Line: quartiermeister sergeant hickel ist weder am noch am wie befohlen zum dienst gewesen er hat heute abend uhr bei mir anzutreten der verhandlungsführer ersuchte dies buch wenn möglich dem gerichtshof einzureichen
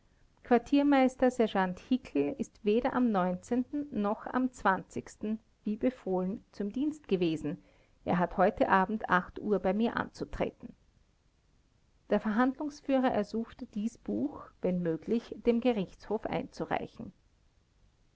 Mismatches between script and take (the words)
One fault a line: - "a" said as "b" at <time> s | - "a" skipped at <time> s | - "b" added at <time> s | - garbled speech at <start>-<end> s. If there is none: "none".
none